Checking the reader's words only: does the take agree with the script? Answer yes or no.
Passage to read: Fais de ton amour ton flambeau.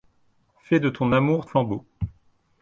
no